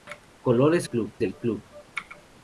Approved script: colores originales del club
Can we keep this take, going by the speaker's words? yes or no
no